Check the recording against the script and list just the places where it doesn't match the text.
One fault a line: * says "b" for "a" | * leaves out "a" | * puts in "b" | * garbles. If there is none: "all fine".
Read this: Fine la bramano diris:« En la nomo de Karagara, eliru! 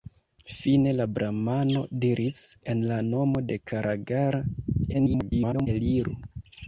* garbles